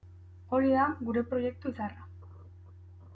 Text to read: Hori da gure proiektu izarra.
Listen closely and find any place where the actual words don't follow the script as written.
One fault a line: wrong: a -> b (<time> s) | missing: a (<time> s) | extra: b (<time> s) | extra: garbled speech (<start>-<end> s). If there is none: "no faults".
no faults